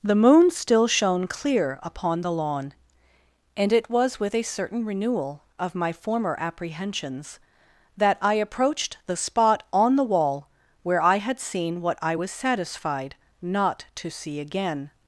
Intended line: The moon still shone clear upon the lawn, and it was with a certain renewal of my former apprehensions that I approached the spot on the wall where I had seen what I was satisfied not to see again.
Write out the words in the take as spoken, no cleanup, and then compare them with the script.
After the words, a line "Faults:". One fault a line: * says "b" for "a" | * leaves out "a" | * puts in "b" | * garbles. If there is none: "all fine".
The moon still shone clear upon the lawn, and it was with a certain renewal of my former apprehensions that I approached the spot on the wall where I had seen what I was satisfied not to see again.
Faults:
all fine